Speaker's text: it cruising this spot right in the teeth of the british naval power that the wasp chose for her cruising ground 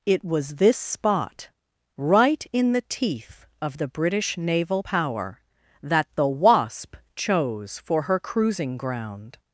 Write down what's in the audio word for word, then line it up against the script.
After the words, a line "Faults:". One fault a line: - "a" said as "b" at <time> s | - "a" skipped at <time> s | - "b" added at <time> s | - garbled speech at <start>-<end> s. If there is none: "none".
it was this spot right in the teeth of the british naval power that the wasp chose for her cruising ground
Faults:
- "cruising" said as "was" at 0.2 s